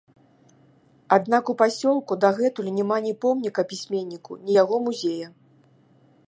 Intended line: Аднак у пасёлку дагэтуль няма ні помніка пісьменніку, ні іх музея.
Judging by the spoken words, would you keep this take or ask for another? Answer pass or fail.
fail